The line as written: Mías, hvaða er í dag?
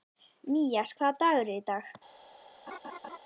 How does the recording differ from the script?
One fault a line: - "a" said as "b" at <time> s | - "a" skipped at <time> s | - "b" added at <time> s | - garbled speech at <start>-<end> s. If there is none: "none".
- "dagur" added at 1.3 s